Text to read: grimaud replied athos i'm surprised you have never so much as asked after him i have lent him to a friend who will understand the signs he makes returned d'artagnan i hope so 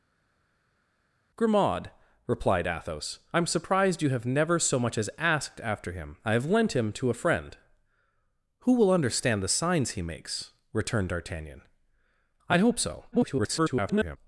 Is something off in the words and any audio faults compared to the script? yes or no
yes